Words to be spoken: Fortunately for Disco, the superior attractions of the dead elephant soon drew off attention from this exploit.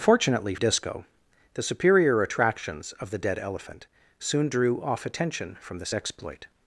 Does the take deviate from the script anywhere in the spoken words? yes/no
yes